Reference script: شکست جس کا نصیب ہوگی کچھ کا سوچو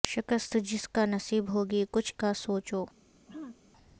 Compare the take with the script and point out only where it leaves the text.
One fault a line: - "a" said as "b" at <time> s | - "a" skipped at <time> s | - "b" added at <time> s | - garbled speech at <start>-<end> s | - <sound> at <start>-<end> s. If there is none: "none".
- throat clearing at 3.3-3.6 s